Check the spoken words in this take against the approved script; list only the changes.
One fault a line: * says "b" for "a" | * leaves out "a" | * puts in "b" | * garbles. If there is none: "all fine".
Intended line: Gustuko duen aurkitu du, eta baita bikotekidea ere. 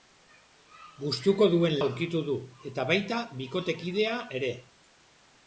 all fine